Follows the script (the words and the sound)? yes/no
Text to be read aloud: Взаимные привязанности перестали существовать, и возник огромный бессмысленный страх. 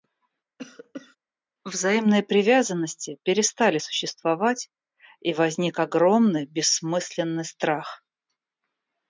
no